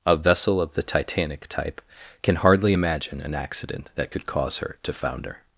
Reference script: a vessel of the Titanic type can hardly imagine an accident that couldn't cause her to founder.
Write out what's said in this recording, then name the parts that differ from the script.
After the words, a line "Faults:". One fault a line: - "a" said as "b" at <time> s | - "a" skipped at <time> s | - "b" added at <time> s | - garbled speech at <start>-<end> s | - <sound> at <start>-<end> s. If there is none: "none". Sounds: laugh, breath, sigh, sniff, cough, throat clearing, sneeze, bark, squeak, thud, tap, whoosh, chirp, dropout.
a vessel of the Titanic type can hardly imagine an accident that could cause her to founder.
Faults:
- "couldn't" said as "could" at 4.1 s